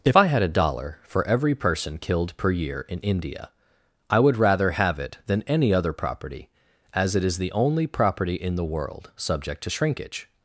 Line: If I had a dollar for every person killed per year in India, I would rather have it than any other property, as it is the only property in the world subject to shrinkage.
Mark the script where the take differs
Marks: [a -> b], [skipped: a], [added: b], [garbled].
If I had a dollar for every person killed per year in India, I would rather have it than any other property, as it is the only property in the world subject to shrinkage.